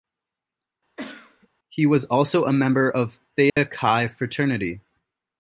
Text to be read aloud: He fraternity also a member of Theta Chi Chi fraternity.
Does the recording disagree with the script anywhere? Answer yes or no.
yes